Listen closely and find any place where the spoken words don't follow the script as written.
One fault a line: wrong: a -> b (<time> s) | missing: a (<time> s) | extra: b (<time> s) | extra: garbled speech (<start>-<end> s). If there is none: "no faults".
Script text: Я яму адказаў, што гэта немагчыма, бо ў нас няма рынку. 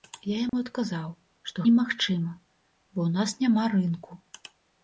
missing: гэта (1.7 s)